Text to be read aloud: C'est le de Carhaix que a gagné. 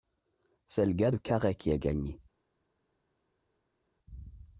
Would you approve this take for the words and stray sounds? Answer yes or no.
no